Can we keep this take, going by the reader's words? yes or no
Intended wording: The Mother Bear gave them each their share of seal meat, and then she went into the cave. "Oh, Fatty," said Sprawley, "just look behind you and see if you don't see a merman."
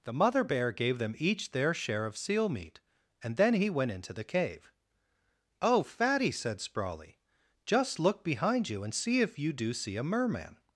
no